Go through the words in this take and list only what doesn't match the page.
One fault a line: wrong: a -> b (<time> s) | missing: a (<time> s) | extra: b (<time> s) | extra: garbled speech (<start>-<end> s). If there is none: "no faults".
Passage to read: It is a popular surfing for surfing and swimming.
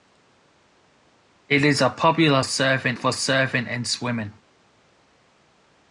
no faults